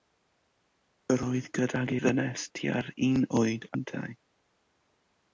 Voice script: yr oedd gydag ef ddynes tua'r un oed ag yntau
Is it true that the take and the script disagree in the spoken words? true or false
true